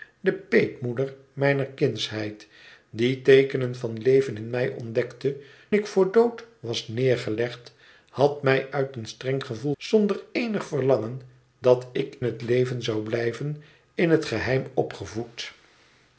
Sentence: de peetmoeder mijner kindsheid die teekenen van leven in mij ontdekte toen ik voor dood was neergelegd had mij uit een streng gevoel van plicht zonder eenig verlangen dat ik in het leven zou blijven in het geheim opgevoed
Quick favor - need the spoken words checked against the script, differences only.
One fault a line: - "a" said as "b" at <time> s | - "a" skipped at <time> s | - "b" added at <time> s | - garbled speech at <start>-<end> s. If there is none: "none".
- "toen" skipped at 5.4 s
- "van plicht" skipped at 9.7 s
- "in" skipped at 12.2 s